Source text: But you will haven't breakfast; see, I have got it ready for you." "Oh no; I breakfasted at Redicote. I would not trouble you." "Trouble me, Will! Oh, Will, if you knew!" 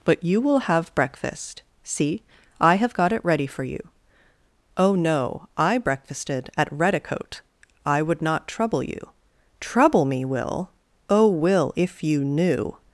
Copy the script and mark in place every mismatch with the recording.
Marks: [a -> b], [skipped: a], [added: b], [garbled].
But you will [haven't -> have] breakfast; see, I have got it ready for you." "Oh no; I breakfasted at Redicote. I would not trouble you." "Trouble me, Will! Oh, Will, if you knew!"